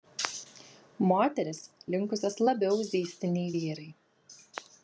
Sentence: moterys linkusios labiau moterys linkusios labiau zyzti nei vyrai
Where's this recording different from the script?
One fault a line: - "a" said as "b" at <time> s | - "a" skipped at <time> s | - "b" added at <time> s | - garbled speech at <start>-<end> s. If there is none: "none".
- "moterys linkusios labiau" skipped at 2.8 s